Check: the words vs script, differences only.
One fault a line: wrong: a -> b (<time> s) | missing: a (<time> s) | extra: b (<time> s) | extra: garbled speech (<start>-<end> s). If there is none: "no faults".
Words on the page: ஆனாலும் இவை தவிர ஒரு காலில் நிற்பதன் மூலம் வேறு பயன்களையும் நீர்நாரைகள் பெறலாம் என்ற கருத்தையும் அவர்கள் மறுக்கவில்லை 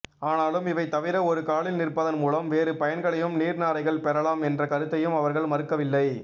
no faults